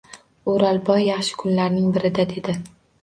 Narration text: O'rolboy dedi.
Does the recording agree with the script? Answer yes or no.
no